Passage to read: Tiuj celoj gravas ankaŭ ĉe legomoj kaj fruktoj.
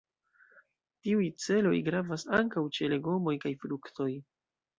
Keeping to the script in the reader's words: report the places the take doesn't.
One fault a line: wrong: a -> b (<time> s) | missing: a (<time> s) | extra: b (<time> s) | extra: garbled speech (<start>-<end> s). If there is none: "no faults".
no faults